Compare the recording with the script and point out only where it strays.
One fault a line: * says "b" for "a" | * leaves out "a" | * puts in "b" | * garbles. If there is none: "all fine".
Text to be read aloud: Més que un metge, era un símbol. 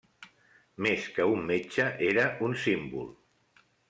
all fine